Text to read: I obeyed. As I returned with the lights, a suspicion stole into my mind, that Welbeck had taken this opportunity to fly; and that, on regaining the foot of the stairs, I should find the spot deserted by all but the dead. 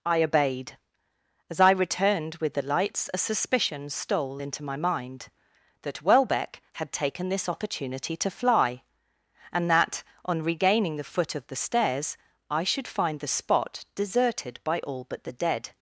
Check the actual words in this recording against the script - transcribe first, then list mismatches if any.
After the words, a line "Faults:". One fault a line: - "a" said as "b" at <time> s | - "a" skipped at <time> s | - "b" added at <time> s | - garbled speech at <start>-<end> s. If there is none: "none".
I obeyed. As I returned with the lights, a suspicion stole into my mind, that Welbeck had taken this opportunity to fly; and that, on regaining the foot of the stairs, I should find the spot deserted by all but the dead.
Faults:
none